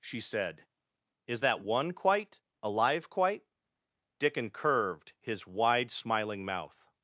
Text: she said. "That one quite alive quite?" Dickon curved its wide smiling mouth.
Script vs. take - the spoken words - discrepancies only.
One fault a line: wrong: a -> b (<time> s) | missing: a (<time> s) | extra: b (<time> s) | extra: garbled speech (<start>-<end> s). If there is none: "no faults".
extra: Is (1.3 s)
wrong: its -> his (5.2 s)